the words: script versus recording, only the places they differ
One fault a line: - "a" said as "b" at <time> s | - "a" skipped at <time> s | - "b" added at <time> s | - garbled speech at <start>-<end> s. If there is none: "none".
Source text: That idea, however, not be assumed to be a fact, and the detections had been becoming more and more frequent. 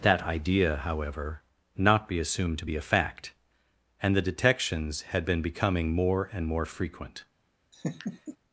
none